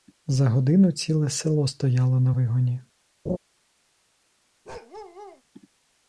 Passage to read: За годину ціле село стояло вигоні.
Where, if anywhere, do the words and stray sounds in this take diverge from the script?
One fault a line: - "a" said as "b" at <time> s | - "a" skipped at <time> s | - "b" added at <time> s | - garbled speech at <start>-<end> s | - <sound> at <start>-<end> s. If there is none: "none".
- "на" added at 2.2 s
- laugh at 3.3-3.4 s
- bark at 4.6-5.4 s